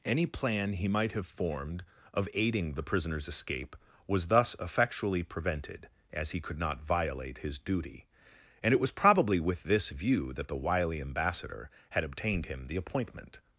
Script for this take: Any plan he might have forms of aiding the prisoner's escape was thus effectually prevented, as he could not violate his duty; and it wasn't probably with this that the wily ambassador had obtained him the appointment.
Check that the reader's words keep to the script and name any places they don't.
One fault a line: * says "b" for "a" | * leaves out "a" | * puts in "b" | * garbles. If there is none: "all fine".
* says "formed" for "forms"
* says "was" for "wasn't"
* puts in "view"